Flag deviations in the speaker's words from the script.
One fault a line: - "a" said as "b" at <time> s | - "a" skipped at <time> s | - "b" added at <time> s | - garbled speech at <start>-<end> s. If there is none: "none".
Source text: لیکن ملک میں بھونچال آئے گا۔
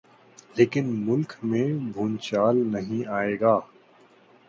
- "نہیں" added at 2.7 s